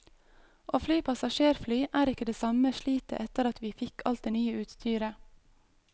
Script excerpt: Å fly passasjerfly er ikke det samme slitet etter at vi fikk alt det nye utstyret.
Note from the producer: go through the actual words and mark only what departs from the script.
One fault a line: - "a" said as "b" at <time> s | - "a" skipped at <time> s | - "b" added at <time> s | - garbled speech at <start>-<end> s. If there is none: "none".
none